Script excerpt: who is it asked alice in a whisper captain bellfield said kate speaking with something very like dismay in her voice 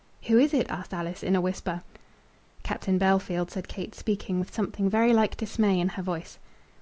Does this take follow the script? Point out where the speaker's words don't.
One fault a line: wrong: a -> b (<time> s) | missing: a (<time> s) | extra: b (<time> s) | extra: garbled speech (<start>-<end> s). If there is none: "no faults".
no faults